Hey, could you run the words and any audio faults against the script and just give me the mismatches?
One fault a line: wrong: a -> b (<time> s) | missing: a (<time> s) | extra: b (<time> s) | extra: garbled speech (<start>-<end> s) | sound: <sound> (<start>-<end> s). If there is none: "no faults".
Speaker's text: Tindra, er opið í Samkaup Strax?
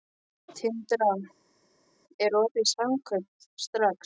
no faults